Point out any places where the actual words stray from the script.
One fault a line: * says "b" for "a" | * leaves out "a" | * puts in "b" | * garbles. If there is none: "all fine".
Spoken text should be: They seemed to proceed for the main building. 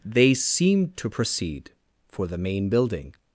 all fine